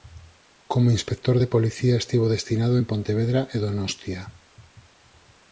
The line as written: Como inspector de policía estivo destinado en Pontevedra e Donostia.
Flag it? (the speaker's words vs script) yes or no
no